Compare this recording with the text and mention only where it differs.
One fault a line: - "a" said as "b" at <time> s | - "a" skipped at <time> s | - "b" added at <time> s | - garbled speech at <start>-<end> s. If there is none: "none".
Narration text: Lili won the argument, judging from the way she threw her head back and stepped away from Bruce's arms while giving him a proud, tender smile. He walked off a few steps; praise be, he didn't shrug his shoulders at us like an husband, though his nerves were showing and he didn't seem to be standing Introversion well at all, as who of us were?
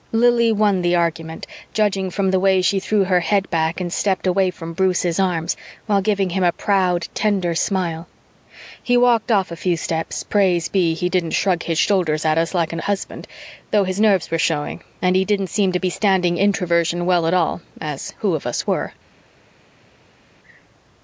none